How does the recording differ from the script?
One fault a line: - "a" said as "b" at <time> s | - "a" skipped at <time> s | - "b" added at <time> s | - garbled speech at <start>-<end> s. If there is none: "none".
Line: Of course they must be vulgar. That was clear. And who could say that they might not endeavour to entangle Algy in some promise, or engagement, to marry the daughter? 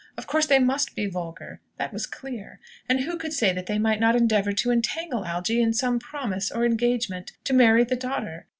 none